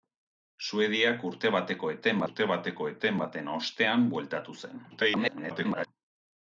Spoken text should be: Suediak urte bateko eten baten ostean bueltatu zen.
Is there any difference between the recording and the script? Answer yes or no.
yes